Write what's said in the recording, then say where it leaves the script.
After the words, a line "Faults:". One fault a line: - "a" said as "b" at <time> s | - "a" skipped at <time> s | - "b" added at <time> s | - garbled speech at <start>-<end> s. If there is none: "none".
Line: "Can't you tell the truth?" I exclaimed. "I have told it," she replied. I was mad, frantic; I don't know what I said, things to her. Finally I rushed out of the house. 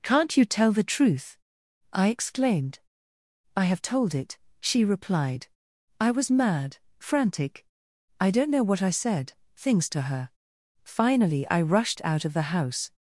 "Can't you tell the truth?" I exclaimed. "I have told it," she replied. I was mad, frantic; I don't know what I said, things to her. Finally I rushed out of the house.
Faults:
none